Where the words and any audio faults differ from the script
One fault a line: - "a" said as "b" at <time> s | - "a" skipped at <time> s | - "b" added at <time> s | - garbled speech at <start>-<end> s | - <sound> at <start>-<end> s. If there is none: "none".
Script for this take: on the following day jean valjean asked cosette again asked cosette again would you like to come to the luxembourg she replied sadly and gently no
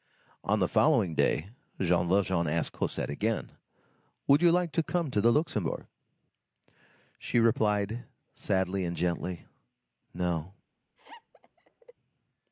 - "asked cosette again" skipped at 3.5 s
- laugh at 11.0-11.9 s